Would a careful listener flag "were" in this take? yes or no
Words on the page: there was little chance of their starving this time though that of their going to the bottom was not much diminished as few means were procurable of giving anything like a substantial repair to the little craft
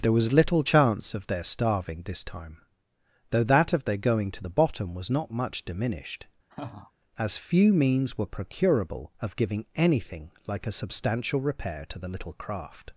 no